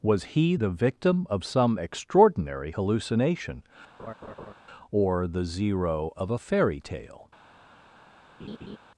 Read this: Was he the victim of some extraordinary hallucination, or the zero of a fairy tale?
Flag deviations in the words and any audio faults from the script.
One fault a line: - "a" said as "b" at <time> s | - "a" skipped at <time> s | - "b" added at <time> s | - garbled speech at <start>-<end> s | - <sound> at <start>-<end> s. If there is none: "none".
- laugh at 4.0-4.5 s
- laugh at 8.4-8.8 s